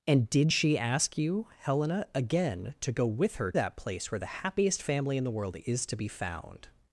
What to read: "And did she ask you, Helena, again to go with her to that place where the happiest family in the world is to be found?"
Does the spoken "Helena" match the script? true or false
true